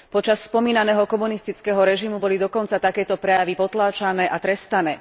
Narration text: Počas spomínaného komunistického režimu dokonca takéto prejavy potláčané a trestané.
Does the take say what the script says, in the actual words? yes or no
no